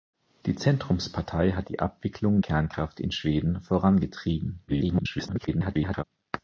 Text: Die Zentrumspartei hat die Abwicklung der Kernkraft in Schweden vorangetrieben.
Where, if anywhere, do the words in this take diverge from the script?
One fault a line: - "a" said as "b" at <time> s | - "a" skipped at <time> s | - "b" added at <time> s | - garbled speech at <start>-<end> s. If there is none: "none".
- "der" skipped at 2.4 s
- garbled speech at 4.7-6.0 s